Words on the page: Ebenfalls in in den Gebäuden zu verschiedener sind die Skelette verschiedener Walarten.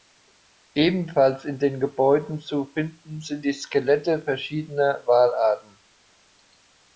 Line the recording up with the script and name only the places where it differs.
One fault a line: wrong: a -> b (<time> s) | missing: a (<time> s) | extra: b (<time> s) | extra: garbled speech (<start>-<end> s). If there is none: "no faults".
missing: in (1.6 s)
wrong: verschiedener -> finden (2.7 s)